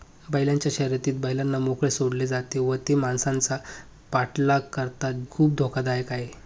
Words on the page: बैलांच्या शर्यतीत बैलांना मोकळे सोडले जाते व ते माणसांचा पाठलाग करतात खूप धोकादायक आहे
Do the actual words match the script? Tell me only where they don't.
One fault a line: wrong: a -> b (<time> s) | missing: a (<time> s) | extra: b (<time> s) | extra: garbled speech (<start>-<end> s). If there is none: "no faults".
no faults